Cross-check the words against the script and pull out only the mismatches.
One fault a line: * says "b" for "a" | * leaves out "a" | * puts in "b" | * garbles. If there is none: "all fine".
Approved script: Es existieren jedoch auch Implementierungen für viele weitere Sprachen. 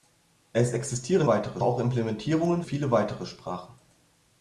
* says "weitere" for "jedoch"
* leaves out "für"